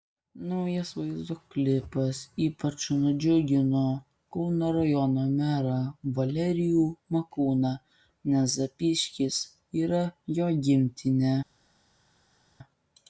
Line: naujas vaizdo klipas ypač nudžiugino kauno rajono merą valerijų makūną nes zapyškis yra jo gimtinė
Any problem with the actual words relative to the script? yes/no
no